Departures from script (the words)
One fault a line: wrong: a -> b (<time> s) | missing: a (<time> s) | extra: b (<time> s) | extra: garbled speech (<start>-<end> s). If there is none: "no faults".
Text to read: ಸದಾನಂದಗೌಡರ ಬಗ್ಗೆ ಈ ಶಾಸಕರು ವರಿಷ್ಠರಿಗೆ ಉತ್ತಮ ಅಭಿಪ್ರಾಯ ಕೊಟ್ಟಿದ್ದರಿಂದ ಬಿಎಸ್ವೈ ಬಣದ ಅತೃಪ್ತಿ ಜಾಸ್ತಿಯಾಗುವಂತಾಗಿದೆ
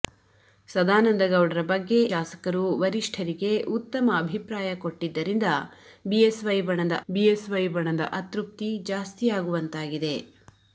missing: ಈ (2.0 s)
extra: ಬಿಎಸ್ವೈ ಬಣದ (7.1 s)